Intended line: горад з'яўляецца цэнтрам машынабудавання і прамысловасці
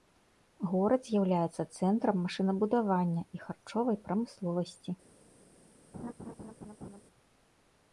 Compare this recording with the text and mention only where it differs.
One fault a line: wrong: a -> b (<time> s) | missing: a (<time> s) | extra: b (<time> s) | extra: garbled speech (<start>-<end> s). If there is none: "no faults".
extra: харчовай (3.5 s)